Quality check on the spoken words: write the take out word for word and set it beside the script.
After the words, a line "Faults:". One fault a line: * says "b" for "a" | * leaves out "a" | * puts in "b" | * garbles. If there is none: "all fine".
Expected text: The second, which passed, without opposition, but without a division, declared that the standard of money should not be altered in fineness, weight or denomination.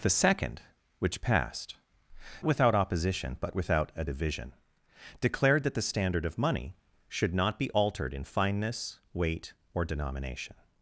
The second, which passed, without opposition, but without a division, declared that the standard of money should not be altered in fineness, weight or denomination.
Faults:
all fine